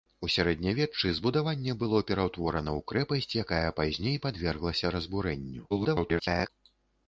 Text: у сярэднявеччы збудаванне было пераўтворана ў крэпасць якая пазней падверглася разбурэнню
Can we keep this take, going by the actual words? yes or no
no